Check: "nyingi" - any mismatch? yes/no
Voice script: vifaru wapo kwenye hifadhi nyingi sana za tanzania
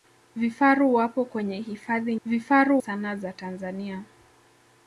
yes